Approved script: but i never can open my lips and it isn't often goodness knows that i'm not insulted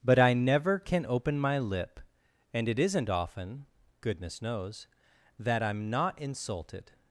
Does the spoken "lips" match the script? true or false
false